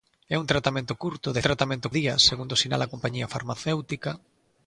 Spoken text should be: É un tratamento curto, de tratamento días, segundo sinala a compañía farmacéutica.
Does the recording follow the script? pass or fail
pass